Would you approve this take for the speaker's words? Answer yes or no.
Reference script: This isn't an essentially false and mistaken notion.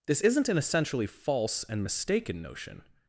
yes